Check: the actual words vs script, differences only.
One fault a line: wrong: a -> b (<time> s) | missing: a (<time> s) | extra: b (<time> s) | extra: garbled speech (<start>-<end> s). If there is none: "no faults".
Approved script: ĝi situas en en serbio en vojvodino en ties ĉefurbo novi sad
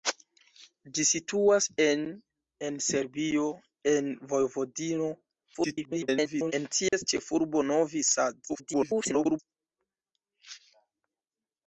extra: garbled speech (5.5-6.5 s)
extra: garbled speech (8.5-9.4 s)